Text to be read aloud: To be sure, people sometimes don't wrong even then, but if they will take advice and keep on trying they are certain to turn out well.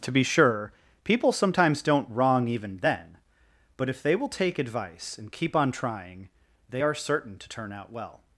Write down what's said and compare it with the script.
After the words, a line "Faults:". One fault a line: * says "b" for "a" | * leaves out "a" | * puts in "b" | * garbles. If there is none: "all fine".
To be sure, people sometimes don't wrong even then, but if they will take advice and keep on trying they are certain to turn out well.
Faults:
all fine